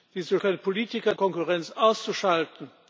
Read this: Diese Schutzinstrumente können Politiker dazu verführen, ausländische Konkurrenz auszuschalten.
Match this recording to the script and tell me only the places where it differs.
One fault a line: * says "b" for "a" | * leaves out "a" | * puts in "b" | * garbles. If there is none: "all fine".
* leaves out "Schutzinstrumente"
* leaves out "dazu verführen ausländische"